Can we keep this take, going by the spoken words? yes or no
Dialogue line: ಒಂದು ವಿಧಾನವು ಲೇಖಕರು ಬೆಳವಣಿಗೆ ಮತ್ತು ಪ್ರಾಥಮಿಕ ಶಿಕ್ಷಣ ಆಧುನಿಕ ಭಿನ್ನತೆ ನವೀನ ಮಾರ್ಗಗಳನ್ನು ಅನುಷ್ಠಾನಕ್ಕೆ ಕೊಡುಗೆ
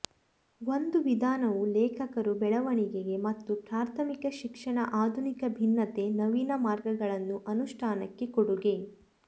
yes